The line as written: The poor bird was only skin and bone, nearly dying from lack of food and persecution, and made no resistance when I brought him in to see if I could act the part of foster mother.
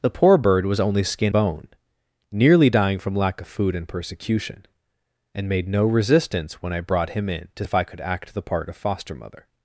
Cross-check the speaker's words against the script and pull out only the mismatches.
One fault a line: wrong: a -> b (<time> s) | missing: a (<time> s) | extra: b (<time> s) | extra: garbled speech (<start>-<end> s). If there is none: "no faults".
missing: and (1.3 s)
missing: see (7.7 s)